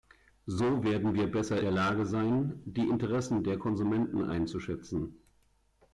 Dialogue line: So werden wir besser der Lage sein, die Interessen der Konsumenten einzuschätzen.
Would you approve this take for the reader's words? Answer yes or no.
yes